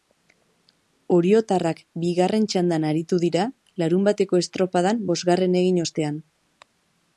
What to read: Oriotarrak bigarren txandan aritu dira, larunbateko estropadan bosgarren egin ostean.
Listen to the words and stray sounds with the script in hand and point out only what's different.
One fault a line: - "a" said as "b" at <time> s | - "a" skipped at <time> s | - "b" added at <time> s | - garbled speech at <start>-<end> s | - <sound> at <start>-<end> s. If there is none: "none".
none